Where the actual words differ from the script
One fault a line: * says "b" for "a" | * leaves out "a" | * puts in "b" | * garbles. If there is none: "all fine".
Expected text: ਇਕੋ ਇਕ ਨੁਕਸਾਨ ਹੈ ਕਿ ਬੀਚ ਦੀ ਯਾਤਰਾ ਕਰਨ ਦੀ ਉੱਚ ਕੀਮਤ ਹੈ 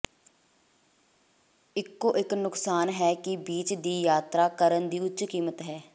all fine